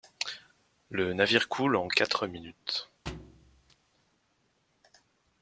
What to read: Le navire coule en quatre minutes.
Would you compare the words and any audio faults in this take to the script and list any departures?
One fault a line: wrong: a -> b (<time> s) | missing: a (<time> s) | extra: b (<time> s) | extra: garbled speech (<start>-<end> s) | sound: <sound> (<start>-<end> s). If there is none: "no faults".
sound: thud (3.1-3.8 s)